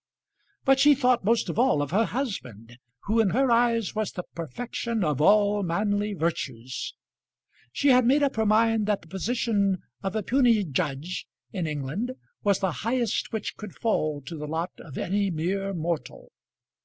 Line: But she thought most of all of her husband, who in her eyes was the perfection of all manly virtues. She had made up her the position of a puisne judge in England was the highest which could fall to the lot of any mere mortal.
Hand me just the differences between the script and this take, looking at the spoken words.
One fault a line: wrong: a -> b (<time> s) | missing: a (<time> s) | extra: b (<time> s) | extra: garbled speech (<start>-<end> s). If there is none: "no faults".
extra: mind that (8.5 s)